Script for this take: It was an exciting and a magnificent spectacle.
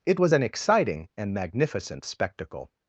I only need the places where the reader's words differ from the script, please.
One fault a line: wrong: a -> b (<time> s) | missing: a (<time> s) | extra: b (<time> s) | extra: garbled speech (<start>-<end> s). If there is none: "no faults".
missing: a (1.3 s)